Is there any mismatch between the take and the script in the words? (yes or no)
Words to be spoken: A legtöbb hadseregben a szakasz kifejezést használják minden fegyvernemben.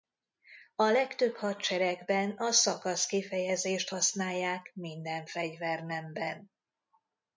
no